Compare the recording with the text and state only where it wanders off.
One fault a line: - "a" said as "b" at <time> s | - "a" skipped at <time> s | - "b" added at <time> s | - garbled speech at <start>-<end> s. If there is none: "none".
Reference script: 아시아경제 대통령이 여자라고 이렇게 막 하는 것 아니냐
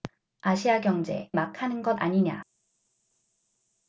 - "대통령이 여자라고 이렇게" skipped at 1.3 s